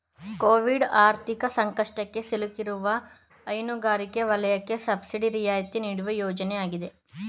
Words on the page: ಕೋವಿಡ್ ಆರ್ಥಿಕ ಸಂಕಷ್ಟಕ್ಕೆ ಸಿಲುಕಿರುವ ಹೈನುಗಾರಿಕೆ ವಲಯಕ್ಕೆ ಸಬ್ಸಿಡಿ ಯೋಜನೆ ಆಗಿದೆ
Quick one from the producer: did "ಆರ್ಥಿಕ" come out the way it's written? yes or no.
yes